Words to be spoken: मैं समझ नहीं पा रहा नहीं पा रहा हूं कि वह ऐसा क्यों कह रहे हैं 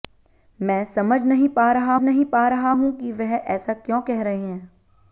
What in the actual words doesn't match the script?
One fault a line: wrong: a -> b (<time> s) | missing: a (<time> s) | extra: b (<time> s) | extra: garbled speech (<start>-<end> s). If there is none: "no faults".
no faults